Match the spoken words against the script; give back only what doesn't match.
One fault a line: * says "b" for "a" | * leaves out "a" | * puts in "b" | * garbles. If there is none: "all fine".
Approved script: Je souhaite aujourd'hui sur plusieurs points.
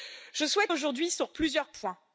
all fine